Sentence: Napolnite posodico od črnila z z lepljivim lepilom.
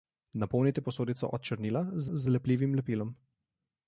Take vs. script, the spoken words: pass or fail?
pass